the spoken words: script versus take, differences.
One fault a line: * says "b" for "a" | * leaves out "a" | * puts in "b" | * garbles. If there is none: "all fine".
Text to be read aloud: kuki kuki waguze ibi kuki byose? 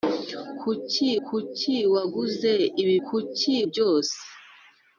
all fine